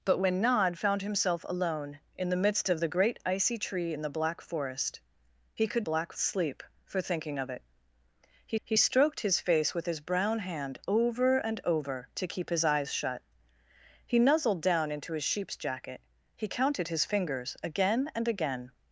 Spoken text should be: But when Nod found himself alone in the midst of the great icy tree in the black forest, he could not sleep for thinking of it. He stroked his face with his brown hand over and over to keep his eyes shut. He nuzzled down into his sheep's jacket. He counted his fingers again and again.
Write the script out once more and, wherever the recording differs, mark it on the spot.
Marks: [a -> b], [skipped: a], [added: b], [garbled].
But when Nod found himself alone in the midst of the great icy tree in the black forest, he could [not -> black] sleep for thinking of it. He [added: he] stroked his face with his brown hand over and over to keep his eyes shut. He nuzzled down into his sheep's jacket. He counted his fingers again and again.